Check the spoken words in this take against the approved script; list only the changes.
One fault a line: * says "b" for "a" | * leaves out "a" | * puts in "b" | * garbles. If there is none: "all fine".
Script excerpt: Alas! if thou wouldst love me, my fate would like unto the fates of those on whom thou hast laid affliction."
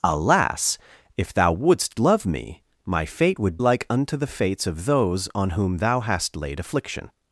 all fine